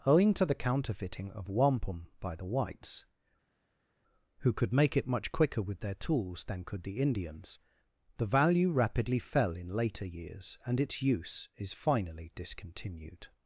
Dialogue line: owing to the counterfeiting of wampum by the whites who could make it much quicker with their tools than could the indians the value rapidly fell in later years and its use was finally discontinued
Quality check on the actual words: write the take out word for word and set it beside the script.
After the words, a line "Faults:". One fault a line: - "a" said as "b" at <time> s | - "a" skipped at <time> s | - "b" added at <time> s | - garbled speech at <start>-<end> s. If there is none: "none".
owing to the counterfeiting of wampum by the whites who could make it much quicker with their tools than could the indians the value rapidly fell in later years and its use is finally discontinued
Faults:
- "was" said as "is" at 11.5 s